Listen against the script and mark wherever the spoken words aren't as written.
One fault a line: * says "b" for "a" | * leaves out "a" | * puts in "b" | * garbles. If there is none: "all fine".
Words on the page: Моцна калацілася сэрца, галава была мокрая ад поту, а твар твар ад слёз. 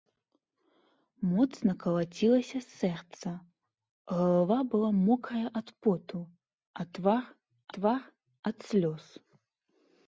all fine